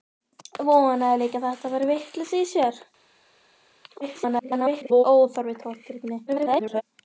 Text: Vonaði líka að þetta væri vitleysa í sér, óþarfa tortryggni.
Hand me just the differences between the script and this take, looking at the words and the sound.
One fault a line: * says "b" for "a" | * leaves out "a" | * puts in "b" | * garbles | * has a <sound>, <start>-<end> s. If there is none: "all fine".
* garbles
* garbles